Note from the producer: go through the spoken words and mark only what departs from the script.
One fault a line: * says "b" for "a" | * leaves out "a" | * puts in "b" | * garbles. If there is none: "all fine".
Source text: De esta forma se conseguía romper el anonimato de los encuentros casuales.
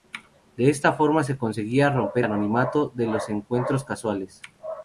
* leaves out "el"